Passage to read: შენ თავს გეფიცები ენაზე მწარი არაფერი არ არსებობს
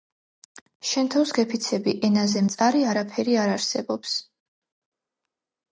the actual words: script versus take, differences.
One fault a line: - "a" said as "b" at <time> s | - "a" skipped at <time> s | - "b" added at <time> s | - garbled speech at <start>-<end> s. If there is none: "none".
none